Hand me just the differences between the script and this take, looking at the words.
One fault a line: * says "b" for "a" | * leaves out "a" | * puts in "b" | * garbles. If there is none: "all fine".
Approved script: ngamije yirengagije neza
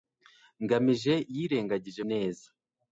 all fine